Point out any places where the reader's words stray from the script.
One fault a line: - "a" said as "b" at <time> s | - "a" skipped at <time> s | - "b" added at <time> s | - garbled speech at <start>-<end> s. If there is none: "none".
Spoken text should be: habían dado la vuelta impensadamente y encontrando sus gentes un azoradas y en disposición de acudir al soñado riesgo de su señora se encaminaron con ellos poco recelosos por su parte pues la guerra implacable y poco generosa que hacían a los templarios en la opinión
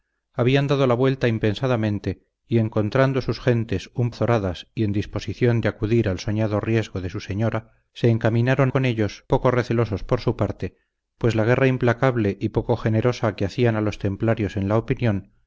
none